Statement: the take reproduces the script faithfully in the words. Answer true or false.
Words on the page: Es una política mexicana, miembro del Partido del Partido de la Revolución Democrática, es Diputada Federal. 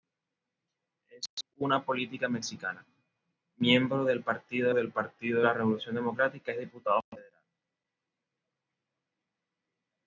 true